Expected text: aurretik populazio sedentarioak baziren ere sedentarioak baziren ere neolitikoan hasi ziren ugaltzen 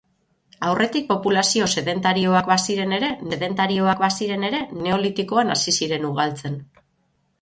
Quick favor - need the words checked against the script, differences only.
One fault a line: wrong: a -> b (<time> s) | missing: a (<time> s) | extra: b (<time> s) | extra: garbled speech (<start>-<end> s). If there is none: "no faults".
no faults